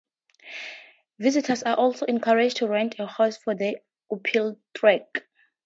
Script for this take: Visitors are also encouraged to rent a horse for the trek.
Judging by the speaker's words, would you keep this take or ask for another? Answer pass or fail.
fail